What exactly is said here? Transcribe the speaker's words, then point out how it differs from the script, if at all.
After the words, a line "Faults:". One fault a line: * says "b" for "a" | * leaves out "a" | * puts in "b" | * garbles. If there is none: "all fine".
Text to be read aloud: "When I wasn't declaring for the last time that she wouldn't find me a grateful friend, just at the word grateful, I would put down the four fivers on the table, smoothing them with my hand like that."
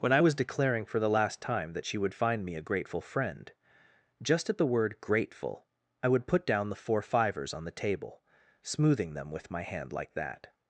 "When I was declaring for the last time that she would find me a grateful friend, just at the word grateful, I would put down the four fivers on the table, smoothing them with my hand like that."
Faults:
* says "was" for "wasn't"
* says "would" for "wouldn't"